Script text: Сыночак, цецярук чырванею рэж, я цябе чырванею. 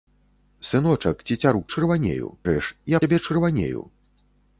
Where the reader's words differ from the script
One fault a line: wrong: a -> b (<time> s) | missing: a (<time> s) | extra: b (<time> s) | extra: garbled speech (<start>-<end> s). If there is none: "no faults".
no faults